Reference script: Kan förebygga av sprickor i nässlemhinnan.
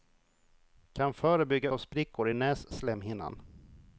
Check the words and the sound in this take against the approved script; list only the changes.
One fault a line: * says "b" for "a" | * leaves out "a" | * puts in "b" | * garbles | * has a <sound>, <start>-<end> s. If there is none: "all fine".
all fine